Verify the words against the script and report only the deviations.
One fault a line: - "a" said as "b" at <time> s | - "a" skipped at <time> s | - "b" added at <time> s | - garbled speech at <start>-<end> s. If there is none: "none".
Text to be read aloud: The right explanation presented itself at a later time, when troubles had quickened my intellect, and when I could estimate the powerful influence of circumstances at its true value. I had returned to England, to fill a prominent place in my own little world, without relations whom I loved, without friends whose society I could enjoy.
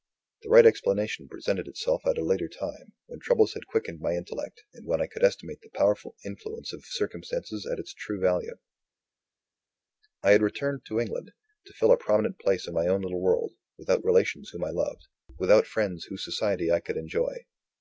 none